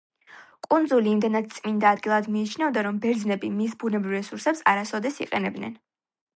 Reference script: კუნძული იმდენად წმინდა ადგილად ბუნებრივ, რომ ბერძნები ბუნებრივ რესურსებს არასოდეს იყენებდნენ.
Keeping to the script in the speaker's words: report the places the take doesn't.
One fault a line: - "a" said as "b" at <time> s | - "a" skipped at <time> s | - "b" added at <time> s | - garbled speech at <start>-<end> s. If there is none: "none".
- "ბუნებრივ" said as "მიიჩნეოდა" at 2.4 s
- "მის" added at 3.6 s